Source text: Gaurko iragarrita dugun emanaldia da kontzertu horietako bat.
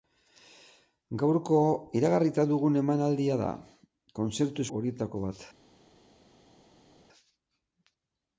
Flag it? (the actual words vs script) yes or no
no